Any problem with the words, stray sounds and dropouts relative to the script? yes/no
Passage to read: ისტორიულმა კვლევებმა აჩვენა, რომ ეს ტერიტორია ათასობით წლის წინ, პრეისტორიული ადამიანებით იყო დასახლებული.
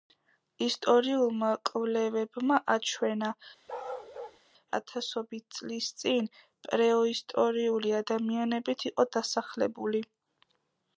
yes